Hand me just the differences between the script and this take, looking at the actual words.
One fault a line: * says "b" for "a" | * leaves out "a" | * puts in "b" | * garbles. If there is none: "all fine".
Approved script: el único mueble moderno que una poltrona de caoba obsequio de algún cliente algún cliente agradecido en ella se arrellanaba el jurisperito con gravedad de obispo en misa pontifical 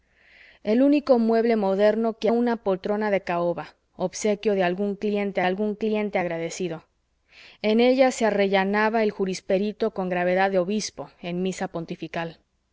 all fine